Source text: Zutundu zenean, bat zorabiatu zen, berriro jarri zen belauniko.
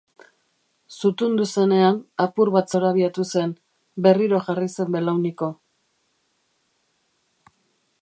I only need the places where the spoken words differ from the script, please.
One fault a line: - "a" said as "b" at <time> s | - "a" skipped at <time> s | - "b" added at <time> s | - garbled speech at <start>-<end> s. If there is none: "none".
- "apur" added at 2.2 s